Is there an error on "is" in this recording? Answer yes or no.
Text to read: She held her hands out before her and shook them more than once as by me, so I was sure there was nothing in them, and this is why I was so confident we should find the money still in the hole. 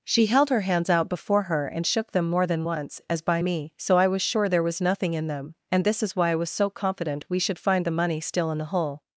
no